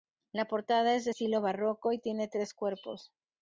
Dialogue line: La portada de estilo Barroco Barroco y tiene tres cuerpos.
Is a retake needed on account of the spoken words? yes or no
yes